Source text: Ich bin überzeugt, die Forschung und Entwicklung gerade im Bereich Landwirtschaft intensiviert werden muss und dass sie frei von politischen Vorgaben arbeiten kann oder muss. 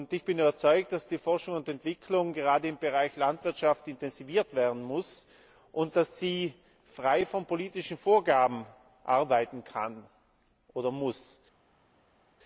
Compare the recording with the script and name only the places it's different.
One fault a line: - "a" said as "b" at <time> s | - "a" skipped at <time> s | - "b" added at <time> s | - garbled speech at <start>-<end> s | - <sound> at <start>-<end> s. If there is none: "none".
- "dass" added at 0.9 s